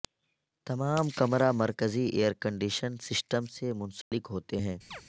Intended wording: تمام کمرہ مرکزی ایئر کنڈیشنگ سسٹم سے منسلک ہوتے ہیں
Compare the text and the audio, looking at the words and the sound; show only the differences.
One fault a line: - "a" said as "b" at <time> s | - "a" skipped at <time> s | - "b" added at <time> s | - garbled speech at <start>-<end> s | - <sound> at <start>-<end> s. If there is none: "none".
- dropout at 4.0-4.1 s
- chirp at 4.9-5.0 s